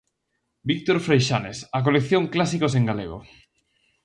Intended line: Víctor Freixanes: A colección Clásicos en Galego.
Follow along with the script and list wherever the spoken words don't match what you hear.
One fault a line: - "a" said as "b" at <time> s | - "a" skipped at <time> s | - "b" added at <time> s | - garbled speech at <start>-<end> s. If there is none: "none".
none